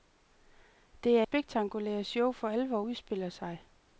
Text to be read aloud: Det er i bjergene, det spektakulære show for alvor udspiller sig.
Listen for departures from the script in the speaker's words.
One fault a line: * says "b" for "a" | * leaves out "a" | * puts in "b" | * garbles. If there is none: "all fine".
* leaves out "i bjergene det"